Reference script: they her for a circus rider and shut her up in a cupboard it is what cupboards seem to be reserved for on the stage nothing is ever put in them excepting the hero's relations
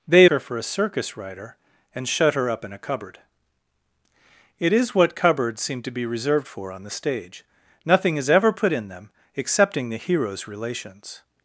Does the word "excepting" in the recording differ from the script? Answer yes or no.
no